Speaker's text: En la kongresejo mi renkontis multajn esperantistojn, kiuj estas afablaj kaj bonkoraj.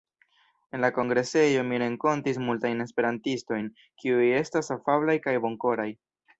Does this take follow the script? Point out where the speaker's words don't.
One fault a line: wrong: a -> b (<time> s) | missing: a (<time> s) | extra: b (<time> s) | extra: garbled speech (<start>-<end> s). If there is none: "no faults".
no faults